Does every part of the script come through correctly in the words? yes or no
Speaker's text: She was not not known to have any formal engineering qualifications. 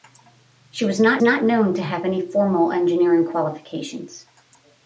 yes